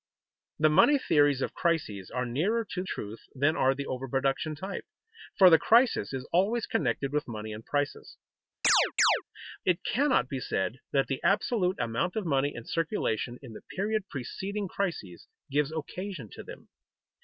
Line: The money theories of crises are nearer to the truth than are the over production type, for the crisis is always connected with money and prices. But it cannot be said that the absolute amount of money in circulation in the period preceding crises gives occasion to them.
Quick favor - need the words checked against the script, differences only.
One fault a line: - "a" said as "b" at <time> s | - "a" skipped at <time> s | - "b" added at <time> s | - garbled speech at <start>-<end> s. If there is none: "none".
- "the" skipped at 2.8 s
- "But" skipped at 8.2 s